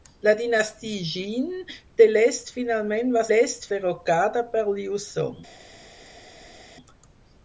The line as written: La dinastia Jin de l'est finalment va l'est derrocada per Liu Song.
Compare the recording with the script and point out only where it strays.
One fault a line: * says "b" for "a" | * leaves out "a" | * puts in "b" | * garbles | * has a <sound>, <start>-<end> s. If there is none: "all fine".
all fine